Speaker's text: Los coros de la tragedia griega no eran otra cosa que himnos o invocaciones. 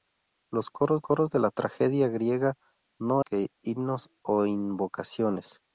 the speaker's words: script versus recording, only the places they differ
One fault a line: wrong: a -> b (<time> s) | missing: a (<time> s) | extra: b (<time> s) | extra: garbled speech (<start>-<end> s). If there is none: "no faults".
extra: coros (1.0 s)
missing: eran otra cosa (3.2 s)